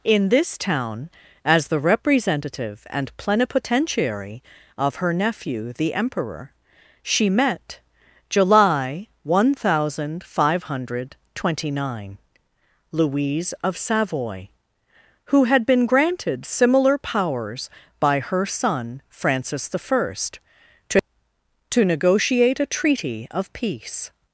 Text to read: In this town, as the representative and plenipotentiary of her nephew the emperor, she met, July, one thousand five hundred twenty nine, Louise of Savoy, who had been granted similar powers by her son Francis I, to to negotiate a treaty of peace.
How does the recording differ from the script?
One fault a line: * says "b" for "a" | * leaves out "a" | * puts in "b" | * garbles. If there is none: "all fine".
all fine